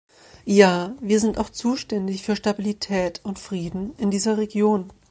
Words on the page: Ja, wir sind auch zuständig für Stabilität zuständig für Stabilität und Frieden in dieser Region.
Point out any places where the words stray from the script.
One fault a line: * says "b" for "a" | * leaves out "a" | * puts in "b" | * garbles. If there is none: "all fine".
* leaves out "zuständig für Stabilität"